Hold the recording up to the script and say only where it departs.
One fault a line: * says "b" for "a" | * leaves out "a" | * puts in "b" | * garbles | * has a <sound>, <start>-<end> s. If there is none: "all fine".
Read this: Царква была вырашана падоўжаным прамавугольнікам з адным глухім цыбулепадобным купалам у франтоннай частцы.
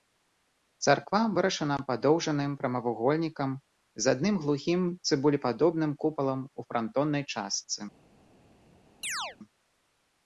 * leaves out "была"
* has a chirp, 9.0-9.4 s